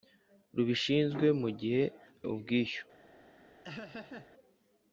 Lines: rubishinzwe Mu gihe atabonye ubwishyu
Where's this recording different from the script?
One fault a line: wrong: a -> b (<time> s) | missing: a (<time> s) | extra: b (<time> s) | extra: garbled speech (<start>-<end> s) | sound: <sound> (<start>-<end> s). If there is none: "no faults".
missing: atabonye (1.8 s)
sound: laugh (3.6-4.3 s)